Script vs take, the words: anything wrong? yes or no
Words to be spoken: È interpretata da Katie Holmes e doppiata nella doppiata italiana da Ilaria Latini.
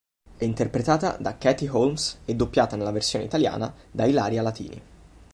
yes